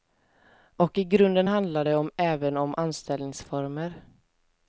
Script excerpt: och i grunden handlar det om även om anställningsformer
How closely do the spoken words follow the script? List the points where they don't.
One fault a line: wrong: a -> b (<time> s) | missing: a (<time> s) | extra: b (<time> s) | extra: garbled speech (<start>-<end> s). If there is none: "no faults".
no faults